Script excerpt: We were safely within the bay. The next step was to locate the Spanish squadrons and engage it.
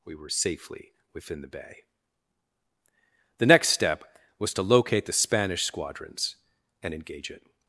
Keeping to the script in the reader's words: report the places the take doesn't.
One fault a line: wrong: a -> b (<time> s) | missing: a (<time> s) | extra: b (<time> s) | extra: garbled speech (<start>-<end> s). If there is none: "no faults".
no faults